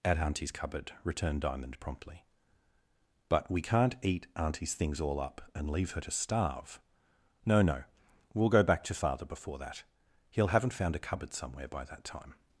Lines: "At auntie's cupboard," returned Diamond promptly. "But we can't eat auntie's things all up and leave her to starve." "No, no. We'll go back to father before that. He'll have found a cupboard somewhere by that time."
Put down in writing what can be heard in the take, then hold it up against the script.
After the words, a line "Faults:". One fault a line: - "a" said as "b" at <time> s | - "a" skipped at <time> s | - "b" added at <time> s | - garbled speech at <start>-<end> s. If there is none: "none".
"At auntie's cupboard," returned Diamond promptly. "But we can't eat auntie's things all up and leave her to starve." "No, no. We'll go back to father before that. He'll haven't found a cupboard somewhere by that time."
Faults:
- "have" said as "haven't" at 10.5 s